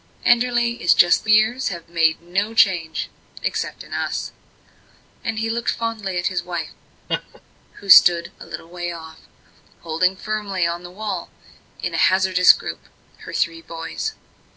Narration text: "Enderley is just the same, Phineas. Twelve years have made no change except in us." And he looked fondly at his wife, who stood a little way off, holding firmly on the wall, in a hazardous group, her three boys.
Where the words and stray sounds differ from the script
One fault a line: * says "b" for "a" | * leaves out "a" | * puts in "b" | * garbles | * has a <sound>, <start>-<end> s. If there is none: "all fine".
* leaves out "same Phineas Twelve"
* has a laugh, 7.1-7.4 s